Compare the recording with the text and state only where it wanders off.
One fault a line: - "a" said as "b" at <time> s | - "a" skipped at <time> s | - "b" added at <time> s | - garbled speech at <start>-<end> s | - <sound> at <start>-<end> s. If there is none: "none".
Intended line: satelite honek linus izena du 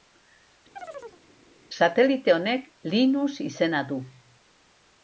- chirp at 0.8-1.2 s